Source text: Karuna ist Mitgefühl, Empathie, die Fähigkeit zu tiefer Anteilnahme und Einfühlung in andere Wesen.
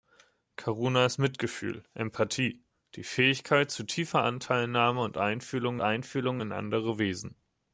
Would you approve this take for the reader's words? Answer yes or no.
no